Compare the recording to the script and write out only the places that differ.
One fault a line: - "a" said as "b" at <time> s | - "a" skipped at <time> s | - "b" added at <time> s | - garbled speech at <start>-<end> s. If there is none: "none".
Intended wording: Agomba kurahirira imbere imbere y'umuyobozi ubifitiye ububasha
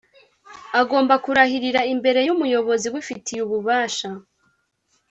- "imbere" skipped at 2.2 s